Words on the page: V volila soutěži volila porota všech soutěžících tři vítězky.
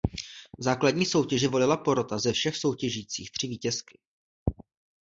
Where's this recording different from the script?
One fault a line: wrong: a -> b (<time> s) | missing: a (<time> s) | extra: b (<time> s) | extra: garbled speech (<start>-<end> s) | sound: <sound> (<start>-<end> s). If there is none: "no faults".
wrong: volila -> základní (0.6 s)
extra: ze (2.1 s)